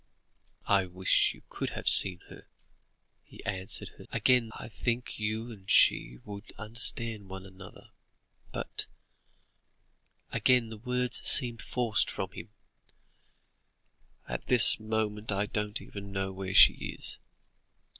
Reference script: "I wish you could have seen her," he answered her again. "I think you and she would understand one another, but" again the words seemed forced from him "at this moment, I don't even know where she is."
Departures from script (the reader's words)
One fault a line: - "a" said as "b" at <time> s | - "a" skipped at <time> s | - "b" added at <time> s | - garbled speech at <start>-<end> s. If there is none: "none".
none